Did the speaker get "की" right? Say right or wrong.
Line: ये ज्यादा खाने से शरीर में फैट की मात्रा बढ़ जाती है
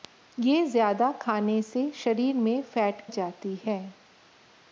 wrong